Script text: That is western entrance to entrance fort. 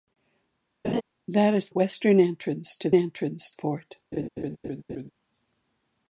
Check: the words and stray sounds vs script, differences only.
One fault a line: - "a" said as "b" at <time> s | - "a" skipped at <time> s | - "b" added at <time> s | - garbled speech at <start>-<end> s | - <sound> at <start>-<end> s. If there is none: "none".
- laugh at 0.8-1.0 s
- laugh at 4.1-5.1 s